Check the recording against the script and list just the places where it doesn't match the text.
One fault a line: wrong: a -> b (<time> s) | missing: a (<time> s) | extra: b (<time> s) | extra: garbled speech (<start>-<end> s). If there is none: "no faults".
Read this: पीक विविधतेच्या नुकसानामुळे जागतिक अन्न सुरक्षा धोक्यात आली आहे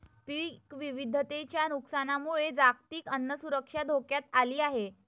no faults